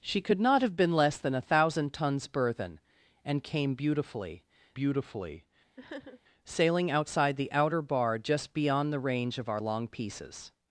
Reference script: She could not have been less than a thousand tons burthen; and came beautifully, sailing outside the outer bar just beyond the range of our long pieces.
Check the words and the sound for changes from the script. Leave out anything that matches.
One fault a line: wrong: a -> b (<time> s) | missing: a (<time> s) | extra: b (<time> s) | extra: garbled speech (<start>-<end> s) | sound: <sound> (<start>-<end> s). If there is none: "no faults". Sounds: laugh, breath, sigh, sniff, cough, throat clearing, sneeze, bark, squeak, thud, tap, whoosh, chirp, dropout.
extra: beautifully (4.7 s)
sound: sniff (5.8-6.2 s)